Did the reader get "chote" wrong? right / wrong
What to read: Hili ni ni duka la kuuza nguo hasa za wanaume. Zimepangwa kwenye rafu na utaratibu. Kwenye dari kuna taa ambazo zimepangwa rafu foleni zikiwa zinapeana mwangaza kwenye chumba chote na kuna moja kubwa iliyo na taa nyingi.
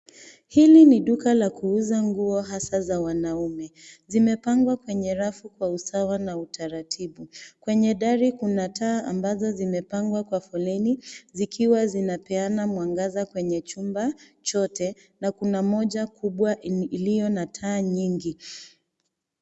right